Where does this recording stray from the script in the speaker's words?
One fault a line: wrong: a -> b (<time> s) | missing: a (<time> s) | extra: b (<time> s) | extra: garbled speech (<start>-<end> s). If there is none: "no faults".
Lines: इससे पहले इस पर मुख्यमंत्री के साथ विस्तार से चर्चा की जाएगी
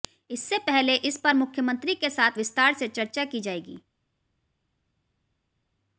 no faults